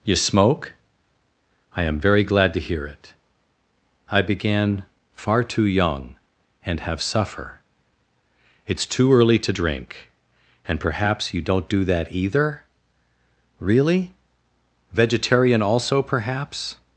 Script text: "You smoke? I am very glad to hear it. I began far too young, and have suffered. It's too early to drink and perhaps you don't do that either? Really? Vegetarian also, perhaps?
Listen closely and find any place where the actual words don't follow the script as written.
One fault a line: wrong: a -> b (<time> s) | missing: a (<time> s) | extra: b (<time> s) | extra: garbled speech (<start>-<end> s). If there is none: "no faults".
wrong: suffered -> suffer (7.0 s)